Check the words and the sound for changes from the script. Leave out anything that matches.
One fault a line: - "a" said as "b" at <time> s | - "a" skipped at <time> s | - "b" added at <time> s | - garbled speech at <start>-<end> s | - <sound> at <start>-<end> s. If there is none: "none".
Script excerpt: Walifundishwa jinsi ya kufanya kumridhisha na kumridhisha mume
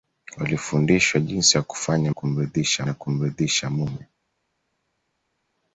none